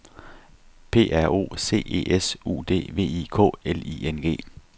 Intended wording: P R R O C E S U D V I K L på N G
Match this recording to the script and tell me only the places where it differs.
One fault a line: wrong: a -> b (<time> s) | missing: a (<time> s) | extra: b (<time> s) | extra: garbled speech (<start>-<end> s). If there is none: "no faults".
missing: R (1.3 s)
wrong: på -> I (3.9 s)